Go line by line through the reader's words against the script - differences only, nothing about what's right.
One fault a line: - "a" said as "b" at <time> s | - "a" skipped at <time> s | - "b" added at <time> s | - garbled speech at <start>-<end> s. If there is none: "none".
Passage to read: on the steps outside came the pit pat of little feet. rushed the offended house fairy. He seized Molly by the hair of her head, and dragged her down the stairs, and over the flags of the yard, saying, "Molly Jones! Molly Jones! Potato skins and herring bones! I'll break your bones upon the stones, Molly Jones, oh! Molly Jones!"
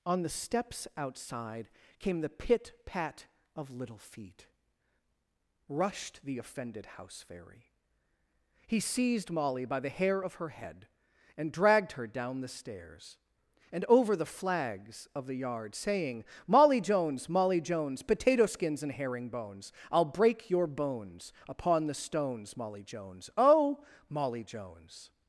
none